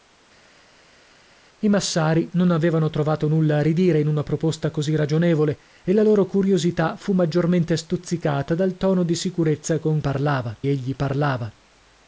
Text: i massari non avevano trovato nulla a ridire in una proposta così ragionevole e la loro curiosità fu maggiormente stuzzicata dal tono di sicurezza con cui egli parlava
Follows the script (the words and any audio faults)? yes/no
no